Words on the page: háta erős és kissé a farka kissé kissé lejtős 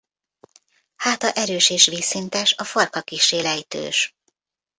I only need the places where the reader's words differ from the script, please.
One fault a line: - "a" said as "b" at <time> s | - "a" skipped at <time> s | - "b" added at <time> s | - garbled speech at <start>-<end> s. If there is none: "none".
- "kissé" said as "vízszintes" at 1.9 s
- "kissé" skipped at 3.4 s